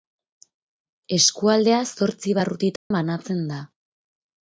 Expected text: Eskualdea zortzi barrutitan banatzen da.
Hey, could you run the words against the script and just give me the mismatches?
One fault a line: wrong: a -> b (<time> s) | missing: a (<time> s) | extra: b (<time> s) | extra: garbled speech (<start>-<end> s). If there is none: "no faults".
no faults